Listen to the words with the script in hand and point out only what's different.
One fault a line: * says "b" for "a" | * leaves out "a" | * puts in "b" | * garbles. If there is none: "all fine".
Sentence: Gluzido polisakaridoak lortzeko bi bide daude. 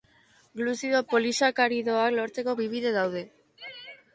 all fine